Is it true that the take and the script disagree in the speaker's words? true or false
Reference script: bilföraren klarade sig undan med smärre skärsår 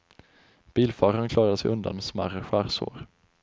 false